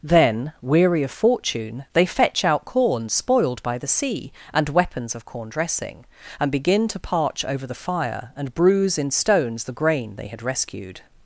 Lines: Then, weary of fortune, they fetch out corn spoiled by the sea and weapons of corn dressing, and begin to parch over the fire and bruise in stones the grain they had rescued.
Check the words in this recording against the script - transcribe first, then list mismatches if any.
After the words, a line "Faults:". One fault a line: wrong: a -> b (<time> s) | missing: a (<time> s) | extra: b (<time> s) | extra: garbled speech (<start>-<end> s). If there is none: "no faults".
Then, weary of fortune, they fetch out corn spoiled by the sea and weapons of corn dressing, and begin to parch over the fire and bruise in stones the grain they had rescued.
Faults:
no faults